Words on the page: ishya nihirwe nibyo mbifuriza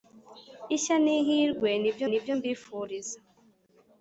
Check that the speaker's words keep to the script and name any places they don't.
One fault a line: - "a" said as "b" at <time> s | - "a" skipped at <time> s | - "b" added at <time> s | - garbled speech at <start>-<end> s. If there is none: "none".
- "nibyo" added at 2.1 s